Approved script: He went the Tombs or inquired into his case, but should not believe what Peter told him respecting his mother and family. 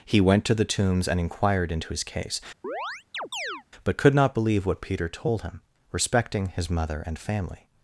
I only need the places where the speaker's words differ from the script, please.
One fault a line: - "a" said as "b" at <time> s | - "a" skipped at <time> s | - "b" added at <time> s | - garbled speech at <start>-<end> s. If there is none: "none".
- "to" added at 0.5 s
- "or" said as "and" at 1.1 s
- "should" said as "could" at 4.0 s